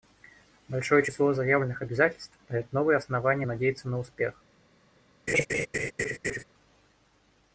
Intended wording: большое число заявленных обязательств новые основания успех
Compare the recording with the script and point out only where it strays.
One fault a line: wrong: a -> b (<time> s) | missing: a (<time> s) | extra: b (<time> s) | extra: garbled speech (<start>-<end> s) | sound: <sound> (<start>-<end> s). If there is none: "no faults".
extra: дает (2.5 s)
extra: надеяться на (3.4 s)
sound: laugh (5.3-6.4 s)